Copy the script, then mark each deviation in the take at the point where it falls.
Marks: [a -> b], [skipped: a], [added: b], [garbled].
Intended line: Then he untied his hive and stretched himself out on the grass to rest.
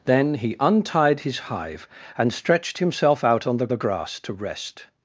Then he untied his hive and stretched himself out on the [added: the] grass to rest.